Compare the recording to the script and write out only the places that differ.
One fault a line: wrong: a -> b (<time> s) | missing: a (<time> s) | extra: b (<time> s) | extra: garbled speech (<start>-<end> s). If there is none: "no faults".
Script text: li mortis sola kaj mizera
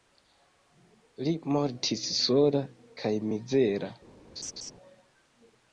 no faults